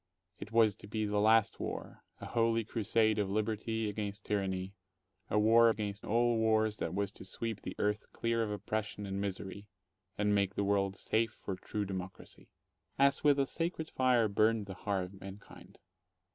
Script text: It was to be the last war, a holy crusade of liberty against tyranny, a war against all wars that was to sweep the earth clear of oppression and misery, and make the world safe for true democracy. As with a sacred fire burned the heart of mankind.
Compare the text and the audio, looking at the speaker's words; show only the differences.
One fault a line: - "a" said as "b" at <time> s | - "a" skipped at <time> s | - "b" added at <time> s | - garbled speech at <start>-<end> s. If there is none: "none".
none